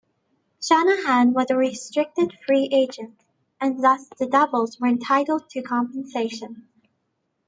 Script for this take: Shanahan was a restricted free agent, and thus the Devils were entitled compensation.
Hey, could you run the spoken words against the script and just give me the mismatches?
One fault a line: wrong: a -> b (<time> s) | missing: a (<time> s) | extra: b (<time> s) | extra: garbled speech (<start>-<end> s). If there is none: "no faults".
extra: to (5.5 s)